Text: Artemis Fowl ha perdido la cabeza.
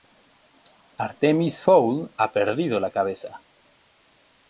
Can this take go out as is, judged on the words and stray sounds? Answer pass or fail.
pass